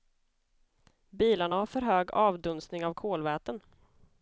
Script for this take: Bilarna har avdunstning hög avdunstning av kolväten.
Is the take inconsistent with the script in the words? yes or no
yes